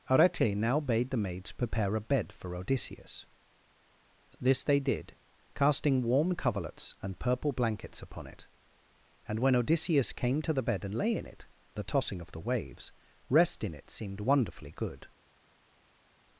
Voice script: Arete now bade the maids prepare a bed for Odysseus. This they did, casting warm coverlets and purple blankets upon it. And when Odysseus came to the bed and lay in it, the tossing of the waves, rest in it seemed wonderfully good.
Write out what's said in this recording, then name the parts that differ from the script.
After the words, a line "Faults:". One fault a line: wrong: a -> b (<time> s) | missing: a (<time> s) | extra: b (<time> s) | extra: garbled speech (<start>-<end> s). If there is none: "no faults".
Arete now bade the maids prepare a bed for Odysseus. This they did, casting warm coverlets and purple blankets upon it. And when Odysseus came to the bed and lay in it, the tossing of the waves, rest in it seemed wonderfully good.
Faults:
no faults